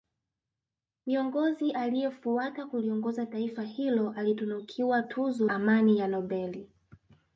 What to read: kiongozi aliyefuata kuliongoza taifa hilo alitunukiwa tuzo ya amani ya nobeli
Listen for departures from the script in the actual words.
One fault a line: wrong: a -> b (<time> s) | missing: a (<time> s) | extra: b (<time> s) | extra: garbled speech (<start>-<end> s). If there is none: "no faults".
missing: ya (5.5 s)